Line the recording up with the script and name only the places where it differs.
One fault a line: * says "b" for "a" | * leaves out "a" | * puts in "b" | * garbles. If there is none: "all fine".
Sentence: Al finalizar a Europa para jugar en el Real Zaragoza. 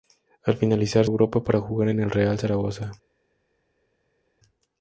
all fine